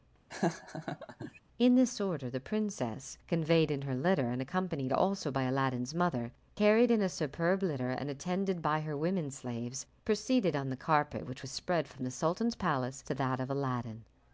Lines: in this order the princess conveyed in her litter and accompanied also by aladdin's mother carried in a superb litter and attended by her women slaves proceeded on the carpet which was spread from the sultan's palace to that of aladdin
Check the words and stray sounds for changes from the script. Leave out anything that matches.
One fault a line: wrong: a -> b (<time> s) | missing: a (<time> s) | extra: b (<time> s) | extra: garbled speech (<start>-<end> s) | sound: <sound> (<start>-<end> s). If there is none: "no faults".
sound: laugh (0.3-1.4 s)